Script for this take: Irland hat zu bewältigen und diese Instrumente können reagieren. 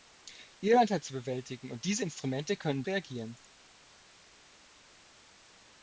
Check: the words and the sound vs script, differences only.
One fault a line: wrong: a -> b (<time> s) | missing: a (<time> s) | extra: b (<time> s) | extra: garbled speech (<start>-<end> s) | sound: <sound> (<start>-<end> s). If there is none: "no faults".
no faults